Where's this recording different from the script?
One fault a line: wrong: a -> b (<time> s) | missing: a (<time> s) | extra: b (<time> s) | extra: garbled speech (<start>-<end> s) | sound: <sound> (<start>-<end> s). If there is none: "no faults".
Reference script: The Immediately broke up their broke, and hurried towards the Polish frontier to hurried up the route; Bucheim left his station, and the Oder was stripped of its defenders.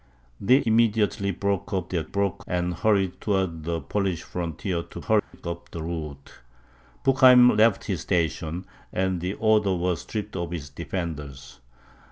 sound: dropout (5.2-5.3 s)